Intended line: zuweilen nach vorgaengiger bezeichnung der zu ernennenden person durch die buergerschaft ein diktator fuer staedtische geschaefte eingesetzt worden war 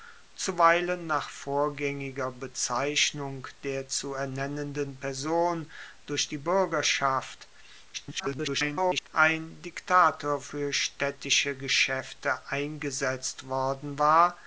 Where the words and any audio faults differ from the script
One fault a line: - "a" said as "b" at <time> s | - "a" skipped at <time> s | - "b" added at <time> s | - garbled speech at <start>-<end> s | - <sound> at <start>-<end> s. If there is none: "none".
- garbled speech at 7.9-9.1 s